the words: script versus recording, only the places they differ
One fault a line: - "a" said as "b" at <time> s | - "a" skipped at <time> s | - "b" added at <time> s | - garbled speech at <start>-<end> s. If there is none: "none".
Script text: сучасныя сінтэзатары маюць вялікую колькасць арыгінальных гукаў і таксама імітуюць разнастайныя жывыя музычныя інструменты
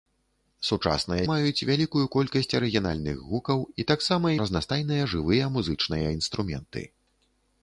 - "сінтэзатары" skipped at 1.2 s
- "імітуюць" skipped at 4.3 s